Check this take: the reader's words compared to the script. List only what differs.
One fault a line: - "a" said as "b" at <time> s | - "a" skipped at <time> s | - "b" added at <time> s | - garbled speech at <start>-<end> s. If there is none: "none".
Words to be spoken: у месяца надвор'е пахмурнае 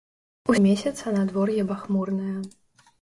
none